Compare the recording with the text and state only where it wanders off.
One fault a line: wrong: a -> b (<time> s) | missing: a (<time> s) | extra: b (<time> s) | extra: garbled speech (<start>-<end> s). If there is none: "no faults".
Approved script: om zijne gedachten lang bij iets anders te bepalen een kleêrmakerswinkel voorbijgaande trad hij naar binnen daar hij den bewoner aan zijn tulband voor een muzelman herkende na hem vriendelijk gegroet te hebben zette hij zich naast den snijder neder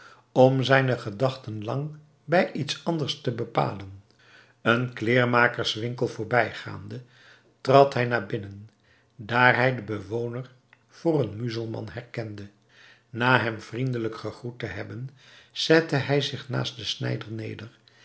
missing: aan zijn tulband (10.5 s)